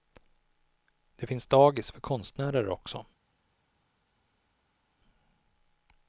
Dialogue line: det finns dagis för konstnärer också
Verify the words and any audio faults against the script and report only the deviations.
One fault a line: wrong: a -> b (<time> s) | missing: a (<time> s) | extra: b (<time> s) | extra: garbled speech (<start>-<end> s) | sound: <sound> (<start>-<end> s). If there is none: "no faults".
no faults